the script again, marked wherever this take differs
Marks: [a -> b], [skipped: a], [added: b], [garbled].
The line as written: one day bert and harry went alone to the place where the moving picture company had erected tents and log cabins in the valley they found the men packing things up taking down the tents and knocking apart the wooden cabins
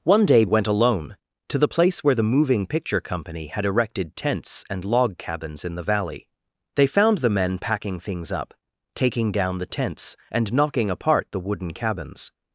one day [skipped: bert and harry] went alone to the place where the moving picture company had erected tents and log cabins in the valley they found the men packing things up taking down the tents and knocking apart the wooden cabins